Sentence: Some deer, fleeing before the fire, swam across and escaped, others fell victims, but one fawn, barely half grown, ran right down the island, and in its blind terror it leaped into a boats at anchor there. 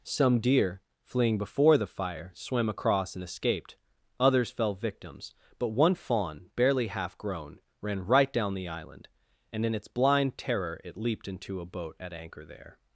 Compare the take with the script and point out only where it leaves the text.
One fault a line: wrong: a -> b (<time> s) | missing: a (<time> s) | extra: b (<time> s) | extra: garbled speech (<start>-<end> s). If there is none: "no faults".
wrong: boats -> boat (11.7 s)